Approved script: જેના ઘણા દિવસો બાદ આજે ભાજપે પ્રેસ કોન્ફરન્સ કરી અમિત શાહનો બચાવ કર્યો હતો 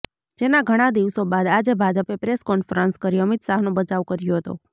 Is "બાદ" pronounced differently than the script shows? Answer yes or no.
no